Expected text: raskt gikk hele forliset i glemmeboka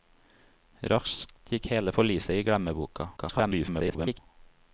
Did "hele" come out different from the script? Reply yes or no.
no